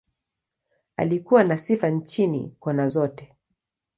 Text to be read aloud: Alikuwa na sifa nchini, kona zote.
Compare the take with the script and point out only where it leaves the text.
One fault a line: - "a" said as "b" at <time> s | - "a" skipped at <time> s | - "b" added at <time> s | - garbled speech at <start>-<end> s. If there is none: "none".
none